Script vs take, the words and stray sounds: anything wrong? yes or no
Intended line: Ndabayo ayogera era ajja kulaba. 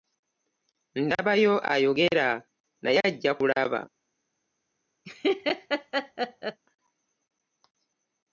yes